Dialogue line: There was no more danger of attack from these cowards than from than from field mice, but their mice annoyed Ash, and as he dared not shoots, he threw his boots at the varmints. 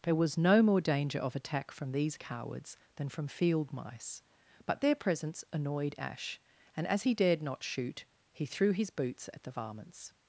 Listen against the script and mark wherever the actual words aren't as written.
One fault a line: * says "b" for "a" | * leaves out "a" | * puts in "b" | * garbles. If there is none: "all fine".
* leaves out "than from"
* says "presence" for "mice"
* says "shoot" for "shoots"